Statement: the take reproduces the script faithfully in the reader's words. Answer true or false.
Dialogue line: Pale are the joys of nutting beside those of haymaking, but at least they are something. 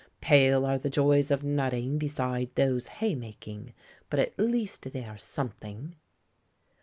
false